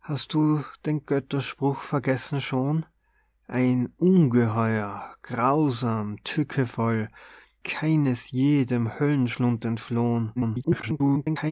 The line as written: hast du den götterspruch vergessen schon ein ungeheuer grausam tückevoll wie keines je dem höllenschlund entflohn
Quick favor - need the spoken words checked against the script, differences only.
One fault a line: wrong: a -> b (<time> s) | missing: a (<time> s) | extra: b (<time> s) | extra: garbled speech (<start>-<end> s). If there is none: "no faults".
missing: wie (7.1 s)
extra: garbled speech (10.4-11.5 s)